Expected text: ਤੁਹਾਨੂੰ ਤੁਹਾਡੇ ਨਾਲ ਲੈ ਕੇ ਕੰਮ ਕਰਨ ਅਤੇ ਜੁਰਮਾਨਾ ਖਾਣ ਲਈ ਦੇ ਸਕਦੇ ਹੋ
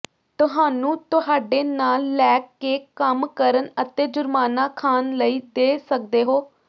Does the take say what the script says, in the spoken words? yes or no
yes